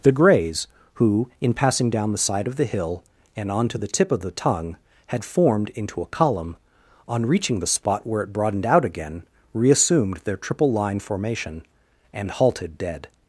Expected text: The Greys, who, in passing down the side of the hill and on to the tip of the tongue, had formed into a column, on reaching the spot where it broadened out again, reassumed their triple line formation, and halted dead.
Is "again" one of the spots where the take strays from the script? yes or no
no